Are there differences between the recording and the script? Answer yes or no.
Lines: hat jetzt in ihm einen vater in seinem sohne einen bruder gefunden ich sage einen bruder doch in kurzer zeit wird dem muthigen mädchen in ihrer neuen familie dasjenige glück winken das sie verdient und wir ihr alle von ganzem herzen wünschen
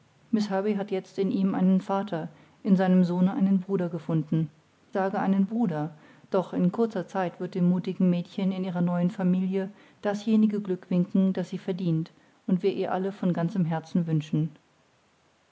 yes